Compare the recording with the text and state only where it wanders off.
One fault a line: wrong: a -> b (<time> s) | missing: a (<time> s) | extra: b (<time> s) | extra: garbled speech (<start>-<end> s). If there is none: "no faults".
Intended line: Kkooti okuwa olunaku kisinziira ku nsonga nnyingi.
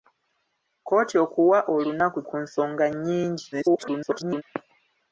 missing: kisinziira (2.2 s)
extra: garbled speech (3.5-4.4 s)